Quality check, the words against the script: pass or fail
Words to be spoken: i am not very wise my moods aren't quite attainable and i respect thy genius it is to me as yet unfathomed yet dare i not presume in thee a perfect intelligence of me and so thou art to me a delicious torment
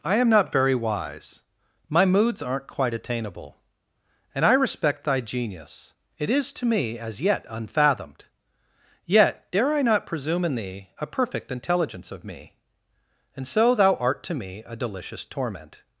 pass